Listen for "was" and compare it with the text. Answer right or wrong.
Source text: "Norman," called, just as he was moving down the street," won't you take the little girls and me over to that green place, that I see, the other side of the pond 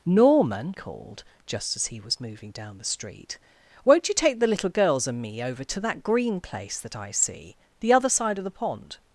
right